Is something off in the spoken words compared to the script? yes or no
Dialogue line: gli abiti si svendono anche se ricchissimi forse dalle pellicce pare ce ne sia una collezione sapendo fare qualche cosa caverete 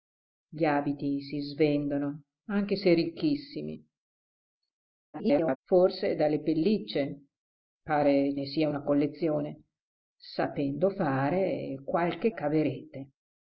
yes